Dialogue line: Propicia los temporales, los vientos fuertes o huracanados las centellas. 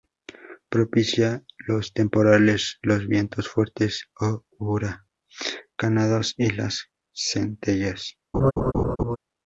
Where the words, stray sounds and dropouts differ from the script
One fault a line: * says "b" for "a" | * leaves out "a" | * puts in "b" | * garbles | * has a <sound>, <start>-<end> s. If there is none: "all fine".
* puts in "y"
* has a laugh, 8.3-9.2 s